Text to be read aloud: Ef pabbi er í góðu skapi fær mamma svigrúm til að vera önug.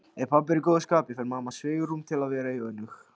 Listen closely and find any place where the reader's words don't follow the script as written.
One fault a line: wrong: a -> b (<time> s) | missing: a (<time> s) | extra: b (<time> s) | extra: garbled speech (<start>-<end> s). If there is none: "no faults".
no faults